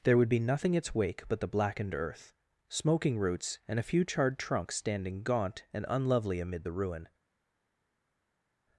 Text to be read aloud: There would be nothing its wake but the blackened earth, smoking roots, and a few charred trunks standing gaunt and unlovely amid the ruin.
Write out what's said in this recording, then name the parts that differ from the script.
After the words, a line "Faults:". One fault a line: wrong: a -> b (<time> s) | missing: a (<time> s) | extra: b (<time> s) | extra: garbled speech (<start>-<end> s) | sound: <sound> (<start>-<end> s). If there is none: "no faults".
There would be nothing its wake but the blackened earth, smoking roots, and a few charred trunks standing gaunt and unlovely amid the ruin.
Faults:
no faults